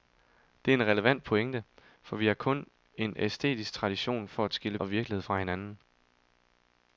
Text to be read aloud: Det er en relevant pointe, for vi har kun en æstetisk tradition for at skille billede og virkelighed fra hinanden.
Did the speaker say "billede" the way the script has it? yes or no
no